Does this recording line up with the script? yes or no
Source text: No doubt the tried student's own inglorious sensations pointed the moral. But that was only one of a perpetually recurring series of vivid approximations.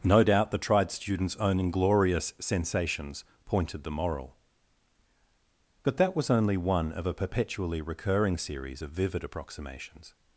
yes